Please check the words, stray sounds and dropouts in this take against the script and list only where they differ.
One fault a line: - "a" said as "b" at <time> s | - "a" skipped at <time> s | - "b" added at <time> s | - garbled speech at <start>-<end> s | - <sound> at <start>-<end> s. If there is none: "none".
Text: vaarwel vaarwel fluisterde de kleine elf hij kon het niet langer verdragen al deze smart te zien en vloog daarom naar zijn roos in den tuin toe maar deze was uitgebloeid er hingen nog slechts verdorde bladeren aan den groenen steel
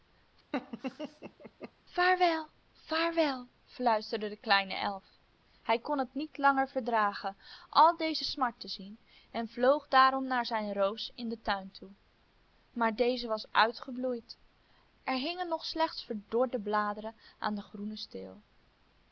- laugh at 0.5-1.7 s